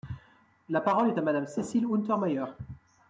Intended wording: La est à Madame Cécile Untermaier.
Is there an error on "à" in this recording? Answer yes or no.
no